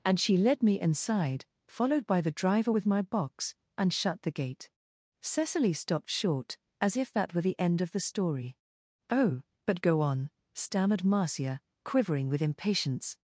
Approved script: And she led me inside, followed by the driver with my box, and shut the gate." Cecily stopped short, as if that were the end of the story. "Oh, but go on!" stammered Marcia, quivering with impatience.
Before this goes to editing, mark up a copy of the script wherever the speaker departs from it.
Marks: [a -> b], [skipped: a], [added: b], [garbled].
And she led me inside, followed by the driver with my box, and shut the gate." Cecily stopped short, as if that were the end of the story. "Oh, but go on!" stammered Marcia, quivering with impatience.